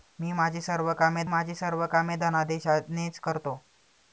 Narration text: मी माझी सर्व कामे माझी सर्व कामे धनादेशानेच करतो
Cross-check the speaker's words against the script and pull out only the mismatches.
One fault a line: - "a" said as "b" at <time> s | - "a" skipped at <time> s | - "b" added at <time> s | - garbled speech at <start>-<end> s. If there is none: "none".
none